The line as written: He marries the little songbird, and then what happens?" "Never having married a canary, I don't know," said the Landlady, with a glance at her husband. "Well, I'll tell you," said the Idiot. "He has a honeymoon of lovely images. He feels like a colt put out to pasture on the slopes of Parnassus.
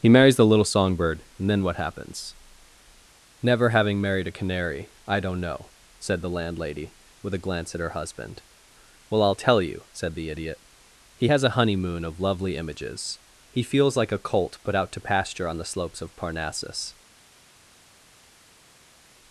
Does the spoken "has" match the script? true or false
true